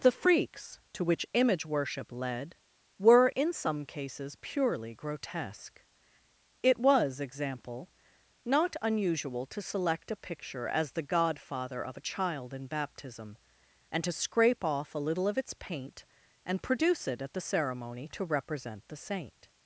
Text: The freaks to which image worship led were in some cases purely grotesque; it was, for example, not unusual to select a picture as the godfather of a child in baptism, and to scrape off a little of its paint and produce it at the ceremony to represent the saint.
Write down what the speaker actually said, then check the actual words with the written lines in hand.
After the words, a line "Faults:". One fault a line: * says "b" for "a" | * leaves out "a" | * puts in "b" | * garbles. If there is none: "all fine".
The freaks to which image worship led were in some cases purely grotesque; it was, example, not unusual to select a picture as the godfather of a child in baptism, and to scrape off a little of its paint and produce it at the ceremony to represent the saint.
Faults:
* leaves out "for"